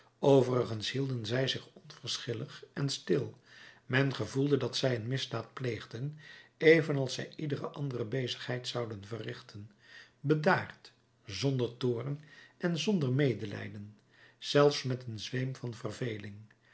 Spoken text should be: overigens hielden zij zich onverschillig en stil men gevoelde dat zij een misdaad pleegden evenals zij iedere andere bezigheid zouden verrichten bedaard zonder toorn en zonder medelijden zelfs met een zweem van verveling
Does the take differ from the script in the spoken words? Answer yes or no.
no